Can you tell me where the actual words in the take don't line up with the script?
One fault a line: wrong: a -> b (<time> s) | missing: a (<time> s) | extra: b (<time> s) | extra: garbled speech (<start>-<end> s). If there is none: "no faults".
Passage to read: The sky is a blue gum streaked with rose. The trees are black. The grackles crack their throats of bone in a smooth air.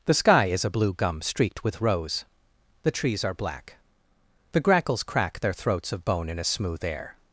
no faults